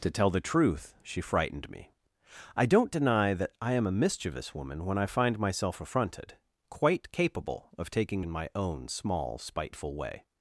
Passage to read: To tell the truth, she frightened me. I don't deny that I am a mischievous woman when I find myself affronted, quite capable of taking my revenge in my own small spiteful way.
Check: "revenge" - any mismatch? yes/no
yes